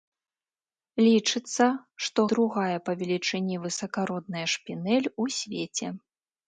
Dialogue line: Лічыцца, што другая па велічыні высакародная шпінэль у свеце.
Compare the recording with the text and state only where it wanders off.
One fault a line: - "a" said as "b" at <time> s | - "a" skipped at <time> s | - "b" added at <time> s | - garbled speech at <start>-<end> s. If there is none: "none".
none